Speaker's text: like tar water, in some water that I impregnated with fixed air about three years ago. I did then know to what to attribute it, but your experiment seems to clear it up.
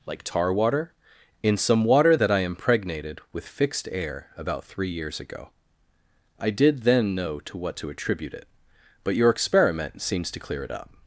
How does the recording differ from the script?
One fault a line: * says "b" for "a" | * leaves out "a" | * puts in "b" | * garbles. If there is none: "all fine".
all fine